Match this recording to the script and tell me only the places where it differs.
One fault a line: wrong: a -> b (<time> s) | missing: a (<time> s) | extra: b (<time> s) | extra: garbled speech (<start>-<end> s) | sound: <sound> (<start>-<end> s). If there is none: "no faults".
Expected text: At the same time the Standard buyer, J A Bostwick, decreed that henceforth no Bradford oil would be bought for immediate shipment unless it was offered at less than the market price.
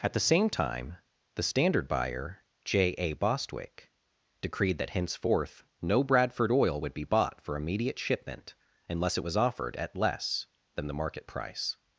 no faults